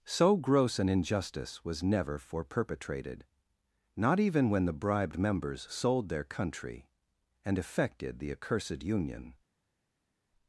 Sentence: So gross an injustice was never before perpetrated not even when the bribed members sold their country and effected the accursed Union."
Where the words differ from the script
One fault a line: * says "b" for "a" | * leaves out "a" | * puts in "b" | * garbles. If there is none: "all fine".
* says "for" for "before"